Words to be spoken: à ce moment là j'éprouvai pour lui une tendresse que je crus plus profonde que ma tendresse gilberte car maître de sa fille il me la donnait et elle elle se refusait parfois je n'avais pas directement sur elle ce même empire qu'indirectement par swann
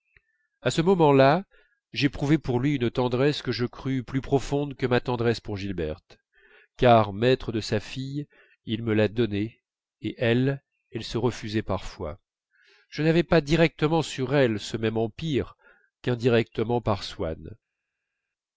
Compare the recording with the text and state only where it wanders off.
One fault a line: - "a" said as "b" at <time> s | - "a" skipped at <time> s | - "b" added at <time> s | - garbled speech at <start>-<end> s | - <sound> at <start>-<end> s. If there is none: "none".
- "pour" added at 5.4 s